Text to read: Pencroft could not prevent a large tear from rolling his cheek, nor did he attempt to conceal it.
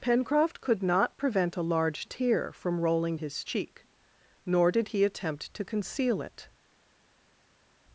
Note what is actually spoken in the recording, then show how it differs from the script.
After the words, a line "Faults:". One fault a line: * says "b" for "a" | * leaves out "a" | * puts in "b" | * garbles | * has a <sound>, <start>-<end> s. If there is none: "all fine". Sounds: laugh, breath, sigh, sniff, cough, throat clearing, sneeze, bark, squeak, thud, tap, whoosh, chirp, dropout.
Pencroft could not prevent a large tear from rolling his cheek, nor did he attempt to conceal it.
Faults:
all fine